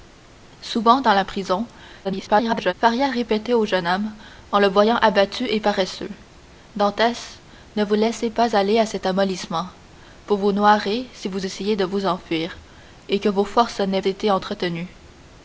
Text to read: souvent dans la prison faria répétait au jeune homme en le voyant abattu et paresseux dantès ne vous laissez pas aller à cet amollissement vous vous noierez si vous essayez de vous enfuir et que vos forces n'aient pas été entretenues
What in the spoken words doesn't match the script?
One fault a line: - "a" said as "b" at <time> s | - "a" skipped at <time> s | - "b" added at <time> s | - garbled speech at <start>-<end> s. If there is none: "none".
- garbled speech at 2.0-2.7 s
- "pas" skipped at 14.0 s